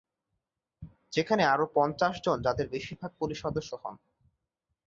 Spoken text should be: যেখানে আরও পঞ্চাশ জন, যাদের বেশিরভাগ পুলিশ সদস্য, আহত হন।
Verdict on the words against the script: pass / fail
fail